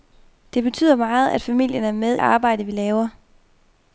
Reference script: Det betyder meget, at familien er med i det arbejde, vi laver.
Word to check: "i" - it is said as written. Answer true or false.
false